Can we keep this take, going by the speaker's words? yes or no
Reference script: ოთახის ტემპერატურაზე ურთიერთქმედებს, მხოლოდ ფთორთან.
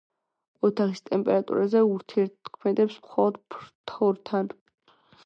yes